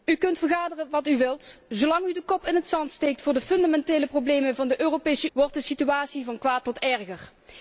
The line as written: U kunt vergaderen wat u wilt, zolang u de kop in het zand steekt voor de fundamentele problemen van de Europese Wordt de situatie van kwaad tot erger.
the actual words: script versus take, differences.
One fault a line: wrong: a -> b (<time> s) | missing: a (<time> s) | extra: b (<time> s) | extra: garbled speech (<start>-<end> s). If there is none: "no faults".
no faults